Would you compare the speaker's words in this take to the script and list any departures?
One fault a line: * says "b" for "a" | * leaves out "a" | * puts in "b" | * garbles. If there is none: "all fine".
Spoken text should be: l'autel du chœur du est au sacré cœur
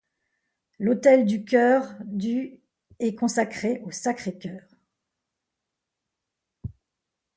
* puts in "consacré"